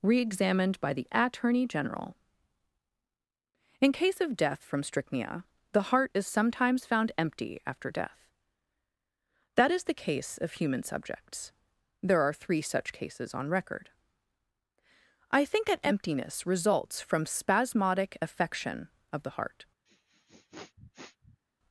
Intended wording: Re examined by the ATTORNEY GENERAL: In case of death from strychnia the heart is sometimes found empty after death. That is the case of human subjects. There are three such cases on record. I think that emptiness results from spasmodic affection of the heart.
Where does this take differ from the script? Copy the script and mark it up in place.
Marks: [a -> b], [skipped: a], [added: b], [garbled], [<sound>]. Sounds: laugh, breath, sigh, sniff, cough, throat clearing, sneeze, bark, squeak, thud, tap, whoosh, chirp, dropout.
Re examined by the ATTORNEY GENERAL: In case of death from strychnia the heart is sometimes found empty after death. That is the case of human subjects. There are three such cases on record. I think that emptiness results from spasmodic affection of the heart. [sniff]